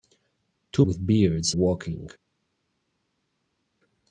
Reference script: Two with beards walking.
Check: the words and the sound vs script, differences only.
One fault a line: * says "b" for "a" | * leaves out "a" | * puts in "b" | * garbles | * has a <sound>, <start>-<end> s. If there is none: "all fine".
all fine